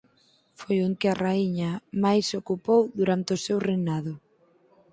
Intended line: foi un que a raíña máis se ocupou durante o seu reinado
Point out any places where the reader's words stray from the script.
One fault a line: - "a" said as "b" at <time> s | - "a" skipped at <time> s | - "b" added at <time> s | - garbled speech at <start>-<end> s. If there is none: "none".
none